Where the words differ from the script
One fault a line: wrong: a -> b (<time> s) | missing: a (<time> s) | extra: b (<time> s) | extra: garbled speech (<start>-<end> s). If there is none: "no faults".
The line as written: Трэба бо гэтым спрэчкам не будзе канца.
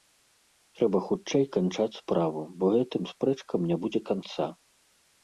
extra: хутчэй канчаць справу (1.1 s)